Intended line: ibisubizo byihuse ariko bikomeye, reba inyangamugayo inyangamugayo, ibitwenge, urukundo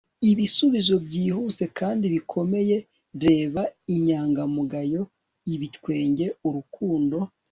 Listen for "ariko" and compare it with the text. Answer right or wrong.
wrong